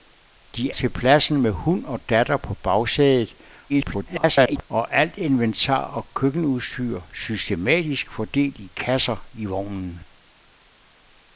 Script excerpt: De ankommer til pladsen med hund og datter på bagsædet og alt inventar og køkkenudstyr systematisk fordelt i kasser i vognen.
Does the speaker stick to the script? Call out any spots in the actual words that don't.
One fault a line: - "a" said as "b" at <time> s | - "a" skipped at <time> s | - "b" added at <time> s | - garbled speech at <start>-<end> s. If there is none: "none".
- "ankommer" skipped at 0.8 s
- garbled speech at 3.7-4.6 s